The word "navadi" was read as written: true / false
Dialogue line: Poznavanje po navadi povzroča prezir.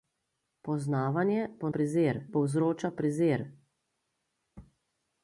false